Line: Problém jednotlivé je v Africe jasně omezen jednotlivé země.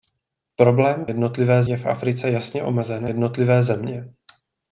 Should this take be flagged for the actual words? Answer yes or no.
no